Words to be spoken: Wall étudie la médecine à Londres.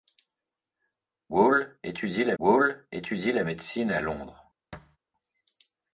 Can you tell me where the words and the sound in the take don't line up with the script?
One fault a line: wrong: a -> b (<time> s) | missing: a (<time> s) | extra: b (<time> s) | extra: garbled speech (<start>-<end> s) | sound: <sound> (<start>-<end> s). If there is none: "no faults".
extra: wall étudie la (2.4 s)
sound: thud (4.7-5.0 s)